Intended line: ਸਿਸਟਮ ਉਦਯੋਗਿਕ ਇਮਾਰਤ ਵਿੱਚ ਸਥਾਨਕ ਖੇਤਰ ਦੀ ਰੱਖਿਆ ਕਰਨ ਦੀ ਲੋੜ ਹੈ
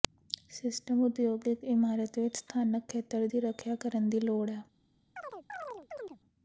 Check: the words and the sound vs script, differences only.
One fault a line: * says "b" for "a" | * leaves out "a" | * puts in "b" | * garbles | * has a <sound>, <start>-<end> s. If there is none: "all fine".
* has a chirp, 5.2-6.2 s